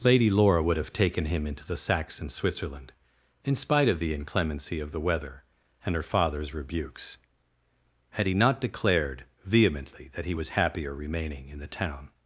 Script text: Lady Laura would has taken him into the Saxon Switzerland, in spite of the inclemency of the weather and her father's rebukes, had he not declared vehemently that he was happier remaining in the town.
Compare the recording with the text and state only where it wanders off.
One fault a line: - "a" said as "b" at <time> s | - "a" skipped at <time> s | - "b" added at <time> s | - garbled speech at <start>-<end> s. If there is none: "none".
- "has" said as "have" at 0.8 s